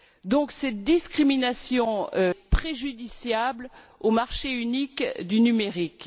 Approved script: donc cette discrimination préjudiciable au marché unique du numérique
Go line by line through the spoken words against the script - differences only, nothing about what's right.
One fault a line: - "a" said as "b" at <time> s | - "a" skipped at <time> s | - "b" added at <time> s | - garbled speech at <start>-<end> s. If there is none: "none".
none